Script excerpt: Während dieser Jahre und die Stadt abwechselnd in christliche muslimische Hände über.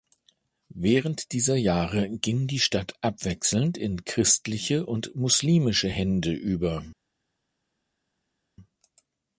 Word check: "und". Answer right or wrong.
wrong